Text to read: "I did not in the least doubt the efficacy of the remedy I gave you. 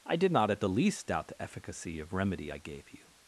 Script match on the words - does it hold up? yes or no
no